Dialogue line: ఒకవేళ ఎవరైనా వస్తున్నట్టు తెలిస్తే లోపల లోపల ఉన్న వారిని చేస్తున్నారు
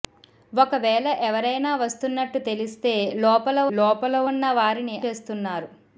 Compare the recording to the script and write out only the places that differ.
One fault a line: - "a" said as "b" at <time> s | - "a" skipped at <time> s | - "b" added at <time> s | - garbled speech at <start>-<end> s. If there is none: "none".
none